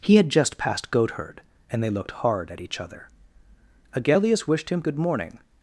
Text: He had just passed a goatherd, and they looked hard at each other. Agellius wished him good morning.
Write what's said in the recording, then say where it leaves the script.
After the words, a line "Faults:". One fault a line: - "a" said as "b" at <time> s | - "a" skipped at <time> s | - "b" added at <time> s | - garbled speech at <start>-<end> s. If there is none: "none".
He had just passed goatherd, and they looked hard at each other. Agellius wished him good morning.
Faults:
- "a" skipped at 0.9 s